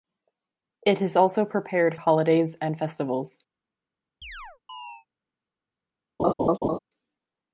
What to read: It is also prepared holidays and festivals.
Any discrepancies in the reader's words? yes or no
no